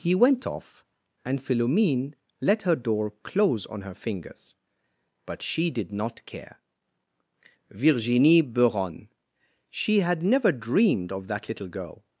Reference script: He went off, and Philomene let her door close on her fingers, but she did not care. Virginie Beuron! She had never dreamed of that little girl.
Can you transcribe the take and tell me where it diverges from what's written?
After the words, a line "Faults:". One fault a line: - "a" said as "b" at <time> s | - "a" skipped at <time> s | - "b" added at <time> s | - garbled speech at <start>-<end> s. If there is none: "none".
He went off, and Philomene let her door close on her fingers, but she did not care. Virginie Beuron! She had never dreamed of that little girl.
Faults:
none